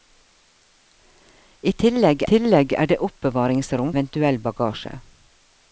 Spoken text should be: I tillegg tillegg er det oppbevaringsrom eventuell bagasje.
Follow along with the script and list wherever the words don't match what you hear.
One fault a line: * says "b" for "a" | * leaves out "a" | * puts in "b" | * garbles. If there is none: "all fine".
all fine